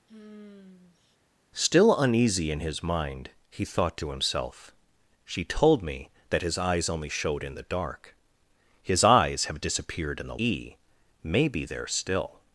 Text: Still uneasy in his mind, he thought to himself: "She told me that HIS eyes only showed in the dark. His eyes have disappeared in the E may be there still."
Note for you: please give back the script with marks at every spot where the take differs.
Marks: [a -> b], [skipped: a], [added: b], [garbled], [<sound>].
[sigh] Still uneasy in his mind, he thought to himself: "She told me that HIS eyes only showed in the dark. His eyes have disappeared in the E may be there still."